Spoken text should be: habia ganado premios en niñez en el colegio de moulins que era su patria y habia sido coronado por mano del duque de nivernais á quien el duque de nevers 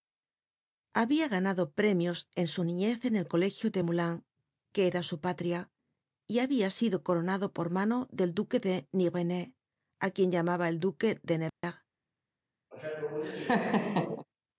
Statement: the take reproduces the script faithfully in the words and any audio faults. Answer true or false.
false